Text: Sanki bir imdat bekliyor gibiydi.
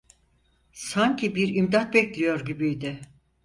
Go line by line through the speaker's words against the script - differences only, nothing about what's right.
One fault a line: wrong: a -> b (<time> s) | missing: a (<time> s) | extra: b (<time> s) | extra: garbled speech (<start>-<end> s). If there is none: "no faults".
no faults